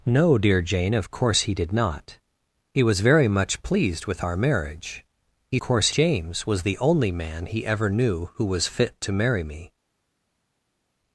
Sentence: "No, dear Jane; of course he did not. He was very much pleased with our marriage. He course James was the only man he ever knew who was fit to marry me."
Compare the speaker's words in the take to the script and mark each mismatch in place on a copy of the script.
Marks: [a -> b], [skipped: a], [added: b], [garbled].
"No, dear Jane; of course he did not. He was very much pleased with our marriage. He course James was the only man he ever knew who was fit to marry me."